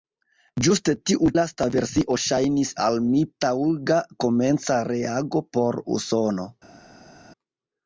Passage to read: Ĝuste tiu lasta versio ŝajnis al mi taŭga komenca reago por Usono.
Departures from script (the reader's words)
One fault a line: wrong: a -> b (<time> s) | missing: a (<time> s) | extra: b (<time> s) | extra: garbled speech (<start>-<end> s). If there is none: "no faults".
no faults